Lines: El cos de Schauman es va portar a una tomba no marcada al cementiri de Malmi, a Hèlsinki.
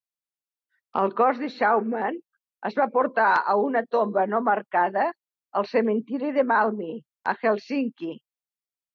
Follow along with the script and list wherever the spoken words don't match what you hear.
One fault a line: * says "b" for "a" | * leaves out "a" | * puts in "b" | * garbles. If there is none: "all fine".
all fine